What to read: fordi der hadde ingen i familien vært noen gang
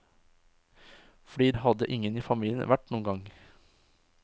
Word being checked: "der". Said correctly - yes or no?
no